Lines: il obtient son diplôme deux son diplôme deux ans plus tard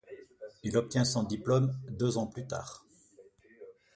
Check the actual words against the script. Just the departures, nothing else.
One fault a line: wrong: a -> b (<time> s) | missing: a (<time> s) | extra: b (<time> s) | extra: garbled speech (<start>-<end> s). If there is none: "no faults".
missing: son diplôme deux (2.2 s)